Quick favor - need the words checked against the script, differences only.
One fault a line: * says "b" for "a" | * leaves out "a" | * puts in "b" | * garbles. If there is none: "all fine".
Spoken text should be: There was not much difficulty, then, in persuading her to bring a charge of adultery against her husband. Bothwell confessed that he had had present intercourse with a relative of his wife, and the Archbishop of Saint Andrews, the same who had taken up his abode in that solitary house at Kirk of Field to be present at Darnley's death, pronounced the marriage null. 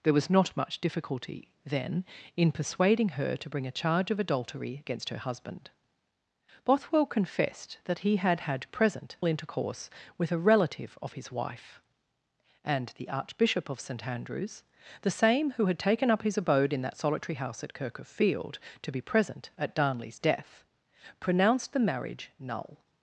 all fine